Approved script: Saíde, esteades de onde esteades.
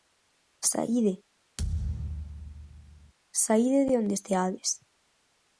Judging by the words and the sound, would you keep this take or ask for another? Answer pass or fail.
fail